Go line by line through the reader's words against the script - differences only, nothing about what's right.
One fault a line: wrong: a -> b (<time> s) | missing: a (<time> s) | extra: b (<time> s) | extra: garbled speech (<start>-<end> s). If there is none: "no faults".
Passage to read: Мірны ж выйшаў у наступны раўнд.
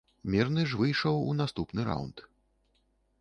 no faults